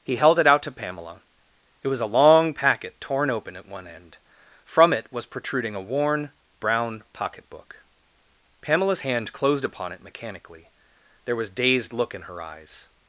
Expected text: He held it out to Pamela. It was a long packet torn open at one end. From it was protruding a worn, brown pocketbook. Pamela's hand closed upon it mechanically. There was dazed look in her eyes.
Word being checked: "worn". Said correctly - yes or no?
yes